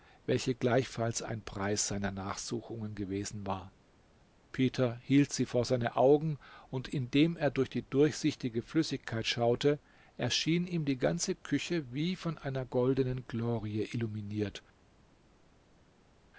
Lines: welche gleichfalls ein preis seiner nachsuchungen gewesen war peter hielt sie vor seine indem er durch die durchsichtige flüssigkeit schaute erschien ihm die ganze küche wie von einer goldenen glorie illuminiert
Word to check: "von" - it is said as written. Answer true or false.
true